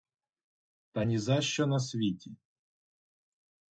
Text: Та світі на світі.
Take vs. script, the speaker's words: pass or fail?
fail